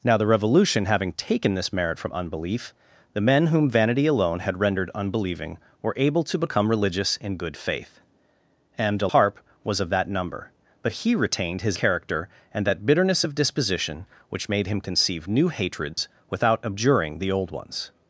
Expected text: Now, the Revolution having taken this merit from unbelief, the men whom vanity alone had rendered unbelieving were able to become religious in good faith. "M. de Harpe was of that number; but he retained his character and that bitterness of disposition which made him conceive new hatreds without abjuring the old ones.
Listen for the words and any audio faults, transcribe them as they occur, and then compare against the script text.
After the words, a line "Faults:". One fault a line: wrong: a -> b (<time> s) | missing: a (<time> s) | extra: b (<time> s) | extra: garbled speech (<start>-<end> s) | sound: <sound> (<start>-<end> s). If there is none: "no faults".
Now, the Revolution having taken this merit from unbelief, the men whom vanity alone had rendered unbelieving were able to become religious in good faith. "M. de Harpe was of that number; but he retained his character and that bitterness of disposition which made him conceive new hatreds without abjuring the old ones.
Faults:
sound: dropout (15.9-16.0 s)